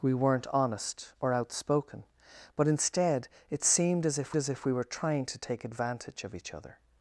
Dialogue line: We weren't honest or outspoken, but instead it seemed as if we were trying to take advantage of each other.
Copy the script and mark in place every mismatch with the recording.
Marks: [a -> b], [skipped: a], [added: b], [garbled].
We weren't honest or outspoken, but instead it seemed as if [added: as if] we were trying to take advantage of each other.